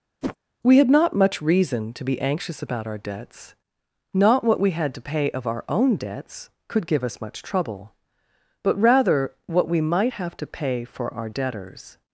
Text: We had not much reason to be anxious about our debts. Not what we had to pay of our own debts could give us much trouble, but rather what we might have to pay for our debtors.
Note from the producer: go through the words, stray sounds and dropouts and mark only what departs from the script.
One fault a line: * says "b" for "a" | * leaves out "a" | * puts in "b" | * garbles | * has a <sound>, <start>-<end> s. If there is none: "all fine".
* has a whoosh, 0.2-0.4 s